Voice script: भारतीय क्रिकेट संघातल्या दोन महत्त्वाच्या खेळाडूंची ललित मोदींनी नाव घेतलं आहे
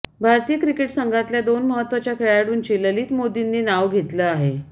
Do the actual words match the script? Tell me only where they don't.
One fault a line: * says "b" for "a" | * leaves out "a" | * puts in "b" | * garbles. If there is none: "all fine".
all fine